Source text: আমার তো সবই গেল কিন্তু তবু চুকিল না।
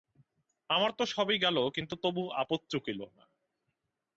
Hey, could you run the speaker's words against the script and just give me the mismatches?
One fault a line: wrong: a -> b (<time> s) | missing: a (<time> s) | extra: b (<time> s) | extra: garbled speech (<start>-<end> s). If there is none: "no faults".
extra: আপদ (2.4 s)